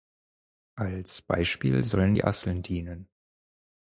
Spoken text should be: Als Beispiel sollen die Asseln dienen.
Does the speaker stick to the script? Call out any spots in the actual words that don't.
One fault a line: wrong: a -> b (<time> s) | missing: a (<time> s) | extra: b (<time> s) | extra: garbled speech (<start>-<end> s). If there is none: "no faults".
no faults